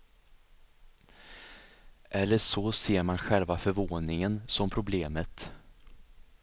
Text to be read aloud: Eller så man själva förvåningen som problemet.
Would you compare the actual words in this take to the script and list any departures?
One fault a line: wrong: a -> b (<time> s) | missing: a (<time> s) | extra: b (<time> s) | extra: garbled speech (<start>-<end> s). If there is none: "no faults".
extra: ser (2.7 s)